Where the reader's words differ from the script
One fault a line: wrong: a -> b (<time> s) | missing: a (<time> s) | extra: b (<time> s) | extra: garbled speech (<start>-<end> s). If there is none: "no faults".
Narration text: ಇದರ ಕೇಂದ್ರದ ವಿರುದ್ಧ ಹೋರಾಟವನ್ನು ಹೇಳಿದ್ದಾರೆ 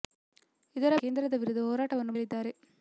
no faults